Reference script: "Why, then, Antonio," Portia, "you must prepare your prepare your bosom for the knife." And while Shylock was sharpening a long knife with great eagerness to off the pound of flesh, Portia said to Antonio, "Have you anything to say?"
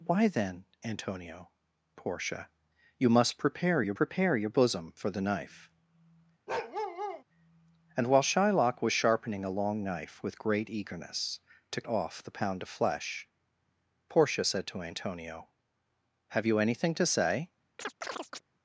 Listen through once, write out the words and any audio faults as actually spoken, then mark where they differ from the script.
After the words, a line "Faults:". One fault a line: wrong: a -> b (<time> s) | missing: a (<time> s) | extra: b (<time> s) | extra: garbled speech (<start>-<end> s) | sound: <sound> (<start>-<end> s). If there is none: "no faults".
"Why, then, Antonio," Portia, "you must prepare your prepare your bosom for the knife." And while Shylock was sharpening a long knife with great eagerness to off the pound of flesh, Portia said to Antonio, "Have you anything to say?"
Faults:
sound: bark (6.5-7.2 s)
sound: chirp (17.8-18.4 s)